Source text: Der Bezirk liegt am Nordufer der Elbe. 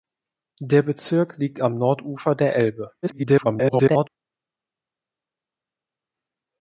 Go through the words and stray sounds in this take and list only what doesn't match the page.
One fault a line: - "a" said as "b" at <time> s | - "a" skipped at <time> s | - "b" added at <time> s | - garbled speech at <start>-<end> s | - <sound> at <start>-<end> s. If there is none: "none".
- garbled speech at 3.0-4.1 s